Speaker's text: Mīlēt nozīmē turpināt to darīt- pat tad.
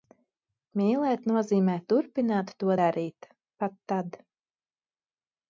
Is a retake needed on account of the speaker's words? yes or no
no